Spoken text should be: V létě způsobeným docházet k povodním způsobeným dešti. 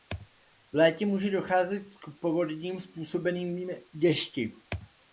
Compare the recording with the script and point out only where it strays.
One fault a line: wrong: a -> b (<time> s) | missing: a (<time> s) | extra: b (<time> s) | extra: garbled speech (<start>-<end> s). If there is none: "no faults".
wrong: způsobeným -> může (1.1 s)